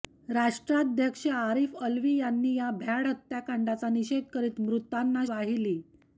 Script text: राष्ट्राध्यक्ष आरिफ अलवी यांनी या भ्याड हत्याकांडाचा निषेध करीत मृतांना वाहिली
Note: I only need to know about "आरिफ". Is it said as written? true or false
true